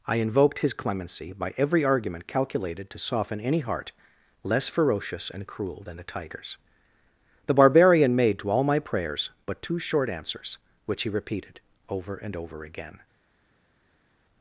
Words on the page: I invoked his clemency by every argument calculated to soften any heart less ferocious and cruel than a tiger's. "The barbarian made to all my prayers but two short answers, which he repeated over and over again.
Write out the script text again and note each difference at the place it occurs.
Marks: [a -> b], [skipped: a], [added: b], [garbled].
I invoked his clemency by every argument calculated to soften any heart less ferocious and cruel than a tiger's. "The barbarian made to all my prayers but two short answers, which he repeated over and over again.